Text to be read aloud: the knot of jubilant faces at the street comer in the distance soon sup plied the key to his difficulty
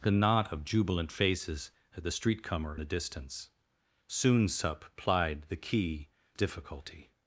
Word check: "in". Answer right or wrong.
wrong